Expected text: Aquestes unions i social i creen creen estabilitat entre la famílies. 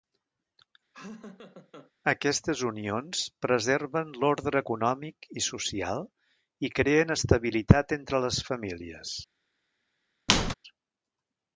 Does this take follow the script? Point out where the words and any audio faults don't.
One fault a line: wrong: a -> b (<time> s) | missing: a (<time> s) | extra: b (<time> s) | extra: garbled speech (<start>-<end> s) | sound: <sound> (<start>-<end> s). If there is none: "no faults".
sound: laugh (0.9-1.9 s)
extra: preserven l'ordre econòmic (3.4 s)
missing: creen (7.1 s)
wrong: la -> les (8.3 s)
sound: squeak (10.3-10.5 s)